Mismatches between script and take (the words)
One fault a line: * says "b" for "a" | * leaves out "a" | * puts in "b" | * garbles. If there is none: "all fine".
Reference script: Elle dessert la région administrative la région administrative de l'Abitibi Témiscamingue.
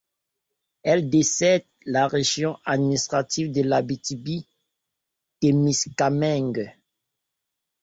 * leaves out "la région administrative"